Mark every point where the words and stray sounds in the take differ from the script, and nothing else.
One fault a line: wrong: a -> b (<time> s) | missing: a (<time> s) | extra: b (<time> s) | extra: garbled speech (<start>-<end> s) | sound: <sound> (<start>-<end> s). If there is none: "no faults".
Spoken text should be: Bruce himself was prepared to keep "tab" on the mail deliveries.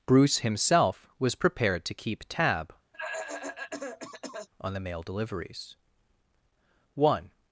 sound: cough (2.9-4.5 s)
extra: One (6.9 s)